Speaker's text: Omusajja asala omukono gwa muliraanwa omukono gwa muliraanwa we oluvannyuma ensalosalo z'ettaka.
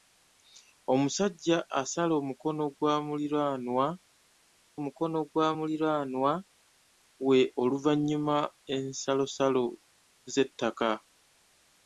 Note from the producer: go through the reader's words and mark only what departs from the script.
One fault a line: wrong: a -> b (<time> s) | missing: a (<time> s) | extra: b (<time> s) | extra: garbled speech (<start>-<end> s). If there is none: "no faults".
no faults